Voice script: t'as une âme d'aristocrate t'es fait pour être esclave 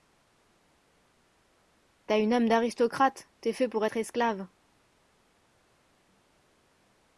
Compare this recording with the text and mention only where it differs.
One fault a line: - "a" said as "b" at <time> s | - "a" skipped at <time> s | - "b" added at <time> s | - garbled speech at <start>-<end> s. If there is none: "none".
none